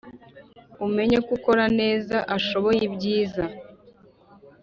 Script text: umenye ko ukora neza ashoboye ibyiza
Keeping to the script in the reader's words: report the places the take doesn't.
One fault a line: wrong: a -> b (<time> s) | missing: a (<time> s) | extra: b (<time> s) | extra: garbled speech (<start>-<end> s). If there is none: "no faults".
no faults